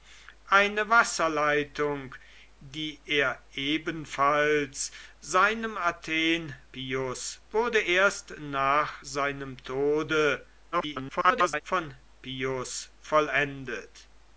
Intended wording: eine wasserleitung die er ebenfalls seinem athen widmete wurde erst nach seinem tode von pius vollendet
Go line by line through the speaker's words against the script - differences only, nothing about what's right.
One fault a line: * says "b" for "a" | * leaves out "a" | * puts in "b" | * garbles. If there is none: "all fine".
* says "pius" for "widmete"
* garbles